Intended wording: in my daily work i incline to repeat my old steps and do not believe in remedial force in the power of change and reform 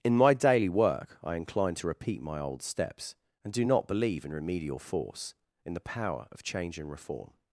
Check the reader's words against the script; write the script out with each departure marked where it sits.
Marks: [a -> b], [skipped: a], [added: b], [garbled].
in my daily work i incline to repeat my old steps and do not believe in remedial force in the power of change and reform